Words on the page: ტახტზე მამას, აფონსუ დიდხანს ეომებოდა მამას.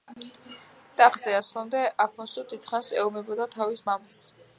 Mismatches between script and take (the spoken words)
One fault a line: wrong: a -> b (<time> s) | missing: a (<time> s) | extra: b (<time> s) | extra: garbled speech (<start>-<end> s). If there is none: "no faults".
wrong: მამას -> ასვლამდე (1.4 s)
extra: თავის (3.6 s)